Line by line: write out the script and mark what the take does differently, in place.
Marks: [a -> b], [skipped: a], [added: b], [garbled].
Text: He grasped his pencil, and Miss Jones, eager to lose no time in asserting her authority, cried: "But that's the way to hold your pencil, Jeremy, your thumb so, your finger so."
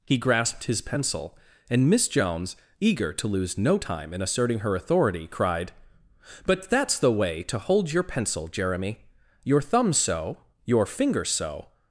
He grasped his pencil, and Miss Jones, eager to lose no time in asserting her authority, cried: "But that's the way to hold your pencil, Jeremy, your thumb so, your finger so."